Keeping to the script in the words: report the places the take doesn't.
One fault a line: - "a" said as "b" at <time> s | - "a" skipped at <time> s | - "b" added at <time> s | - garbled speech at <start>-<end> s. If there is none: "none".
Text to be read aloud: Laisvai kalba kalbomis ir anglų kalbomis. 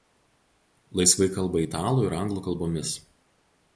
- "kalbomis" said as "italų" at 1.6 s